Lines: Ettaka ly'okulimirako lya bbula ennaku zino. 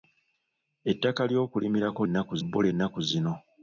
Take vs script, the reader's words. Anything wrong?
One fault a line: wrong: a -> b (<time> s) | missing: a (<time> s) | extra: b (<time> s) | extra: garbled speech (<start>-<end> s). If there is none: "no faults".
wrong: lya -> ennaku (2.1 s)